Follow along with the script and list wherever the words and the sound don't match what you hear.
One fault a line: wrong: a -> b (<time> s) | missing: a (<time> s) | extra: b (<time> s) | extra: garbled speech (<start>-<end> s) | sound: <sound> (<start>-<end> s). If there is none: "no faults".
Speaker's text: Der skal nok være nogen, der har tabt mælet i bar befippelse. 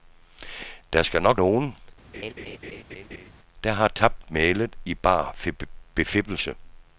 missing: være (1.4 s)
sound: laugh (2.1-3.3 s)